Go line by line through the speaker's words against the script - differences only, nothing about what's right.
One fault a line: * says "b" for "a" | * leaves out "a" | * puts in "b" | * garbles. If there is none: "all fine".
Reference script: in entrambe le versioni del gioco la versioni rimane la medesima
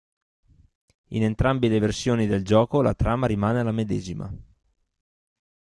* says "trama" for "versioni"